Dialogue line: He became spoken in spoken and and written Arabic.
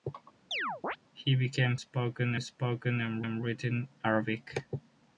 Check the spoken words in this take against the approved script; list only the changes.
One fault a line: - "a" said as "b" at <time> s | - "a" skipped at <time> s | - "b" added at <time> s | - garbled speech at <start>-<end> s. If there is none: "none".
none